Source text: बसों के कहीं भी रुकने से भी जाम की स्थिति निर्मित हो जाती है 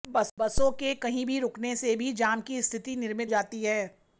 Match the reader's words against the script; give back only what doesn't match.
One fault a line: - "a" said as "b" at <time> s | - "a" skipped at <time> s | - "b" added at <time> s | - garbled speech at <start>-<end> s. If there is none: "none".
- "हो" skipped at 3.3 s